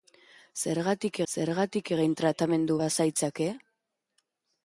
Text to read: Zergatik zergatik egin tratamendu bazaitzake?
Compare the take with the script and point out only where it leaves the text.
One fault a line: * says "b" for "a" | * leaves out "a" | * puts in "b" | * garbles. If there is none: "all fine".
all fine